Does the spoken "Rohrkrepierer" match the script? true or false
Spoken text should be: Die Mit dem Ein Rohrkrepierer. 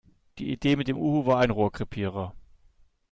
true